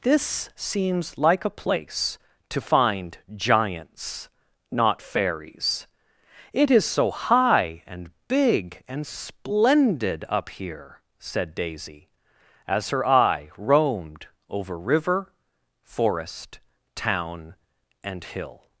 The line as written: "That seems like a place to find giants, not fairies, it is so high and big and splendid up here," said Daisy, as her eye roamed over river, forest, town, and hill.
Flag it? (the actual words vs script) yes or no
yes